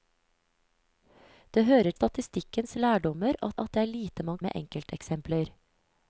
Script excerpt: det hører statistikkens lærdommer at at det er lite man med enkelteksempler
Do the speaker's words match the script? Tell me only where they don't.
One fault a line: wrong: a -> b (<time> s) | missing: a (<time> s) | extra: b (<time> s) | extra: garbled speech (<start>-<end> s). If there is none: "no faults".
no faults